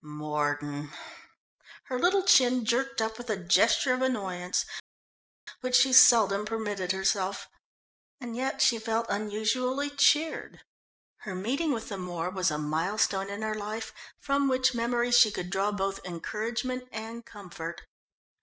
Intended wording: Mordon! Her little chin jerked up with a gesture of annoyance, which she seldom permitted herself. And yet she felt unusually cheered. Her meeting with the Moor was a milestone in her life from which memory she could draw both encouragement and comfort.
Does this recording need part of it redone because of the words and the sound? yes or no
no